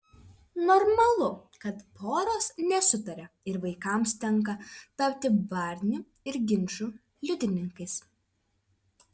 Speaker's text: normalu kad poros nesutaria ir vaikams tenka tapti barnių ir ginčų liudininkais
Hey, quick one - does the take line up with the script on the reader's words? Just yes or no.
yes